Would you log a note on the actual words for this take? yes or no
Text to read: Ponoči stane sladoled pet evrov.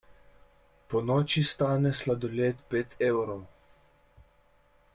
no